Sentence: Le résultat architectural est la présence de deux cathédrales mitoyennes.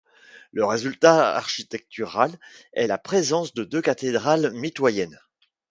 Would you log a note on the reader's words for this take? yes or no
no